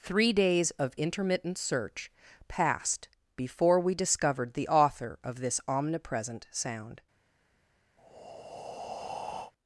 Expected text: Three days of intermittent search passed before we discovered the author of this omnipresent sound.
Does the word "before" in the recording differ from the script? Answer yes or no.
no